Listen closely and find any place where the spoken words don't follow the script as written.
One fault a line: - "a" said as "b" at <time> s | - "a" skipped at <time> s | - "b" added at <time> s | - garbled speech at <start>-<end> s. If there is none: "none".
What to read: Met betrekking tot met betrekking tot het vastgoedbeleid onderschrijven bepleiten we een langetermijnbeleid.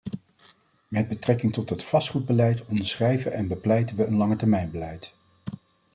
- "met betrekking tot" skipped at 1.7 s
- "en" added at 3.3 s